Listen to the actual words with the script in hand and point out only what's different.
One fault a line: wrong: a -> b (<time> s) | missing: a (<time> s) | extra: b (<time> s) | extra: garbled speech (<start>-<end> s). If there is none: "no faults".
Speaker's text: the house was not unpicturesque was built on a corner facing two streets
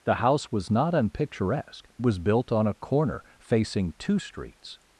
no faults